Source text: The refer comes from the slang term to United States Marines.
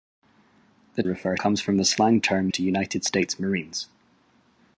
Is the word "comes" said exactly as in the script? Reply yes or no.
yes